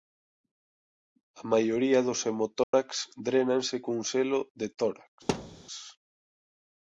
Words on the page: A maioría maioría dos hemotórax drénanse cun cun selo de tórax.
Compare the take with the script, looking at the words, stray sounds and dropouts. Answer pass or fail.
fail